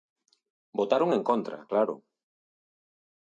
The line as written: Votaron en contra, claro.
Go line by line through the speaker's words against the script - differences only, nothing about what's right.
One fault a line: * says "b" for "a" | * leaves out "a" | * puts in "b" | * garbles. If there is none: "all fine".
all fine